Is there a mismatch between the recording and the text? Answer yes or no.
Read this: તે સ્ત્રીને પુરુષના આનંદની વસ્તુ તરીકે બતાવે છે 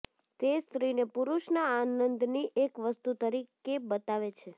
yes